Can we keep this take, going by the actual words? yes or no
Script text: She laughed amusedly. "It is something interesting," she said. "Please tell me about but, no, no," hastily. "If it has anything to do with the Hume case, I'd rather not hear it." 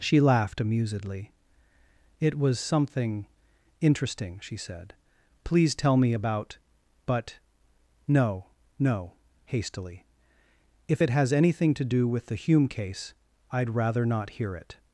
no